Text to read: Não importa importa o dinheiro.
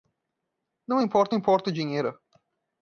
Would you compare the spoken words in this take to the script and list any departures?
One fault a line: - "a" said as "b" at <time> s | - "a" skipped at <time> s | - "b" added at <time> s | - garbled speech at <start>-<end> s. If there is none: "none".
none